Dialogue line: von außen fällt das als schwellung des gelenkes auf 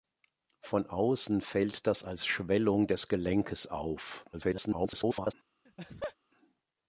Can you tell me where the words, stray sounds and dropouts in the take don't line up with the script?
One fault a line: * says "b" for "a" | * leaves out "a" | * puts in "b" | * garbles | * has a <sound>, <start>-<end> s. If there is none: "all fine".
* garbles
* has a laugh, 5.7-6.2 s